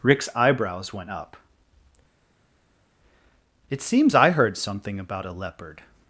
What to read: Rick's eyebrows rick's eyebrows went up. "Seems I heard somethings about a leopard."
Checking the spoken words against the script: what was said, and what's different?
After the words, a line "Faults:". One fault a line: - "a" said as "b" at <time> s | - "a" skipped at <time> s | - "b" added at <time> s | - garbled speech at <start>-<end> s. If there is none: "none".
Rick's eyebrows went up. "It seems I heard something about a leopard."
Faults:
- "rick's eyebrows" skipped at 0.9 s
- "It" added at 3.7 s
- "somethings" said as "something" at 4.6 s